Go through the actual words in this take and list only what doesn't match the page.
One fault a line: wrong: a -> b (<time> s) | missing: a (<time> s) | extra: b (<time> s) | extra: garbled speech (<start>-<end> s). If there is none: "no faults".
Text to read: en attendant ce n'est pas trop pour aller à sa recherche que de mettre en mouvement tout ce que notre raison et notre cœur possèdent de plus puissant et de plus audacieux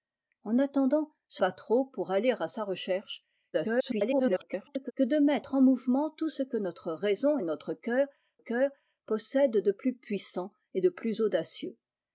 missing: n'est (1.4 s)
extra: garbled speech (3.5-4.9 s)
extra: cœur (8.4 s)